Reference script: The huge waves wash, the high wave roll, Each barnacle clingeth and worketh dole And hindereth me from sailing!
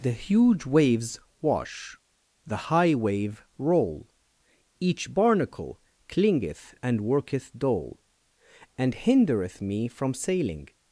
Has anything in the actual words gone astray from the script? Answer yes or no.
no